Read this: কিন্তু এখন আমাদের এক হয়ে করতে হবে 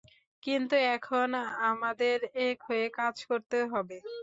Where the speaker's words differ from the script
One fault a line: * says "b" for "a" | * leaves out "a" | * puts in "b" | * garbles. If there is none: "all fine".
* puts in "কাজ"